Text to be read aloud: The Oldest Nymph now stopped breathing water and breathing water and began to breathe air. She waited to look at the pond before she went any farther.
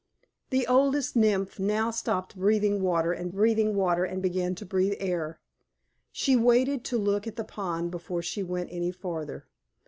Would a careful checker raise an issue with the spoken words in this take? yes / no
no